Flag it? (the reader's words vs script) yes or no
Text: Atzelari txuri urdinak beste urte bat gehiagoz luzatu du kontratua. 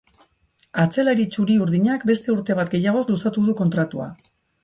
no